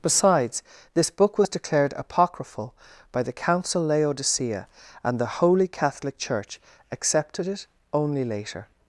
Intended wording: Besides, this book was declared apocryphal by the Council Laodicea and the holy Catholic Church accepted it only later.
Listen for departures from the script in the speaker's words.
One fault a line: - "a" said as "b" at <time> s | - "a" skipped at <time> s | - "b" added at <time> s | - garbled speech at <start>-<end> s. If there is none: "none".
none